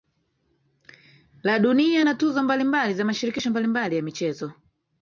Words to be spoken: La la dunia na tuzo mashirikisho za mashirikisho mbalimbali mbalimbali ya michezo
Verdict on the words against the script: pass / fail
fail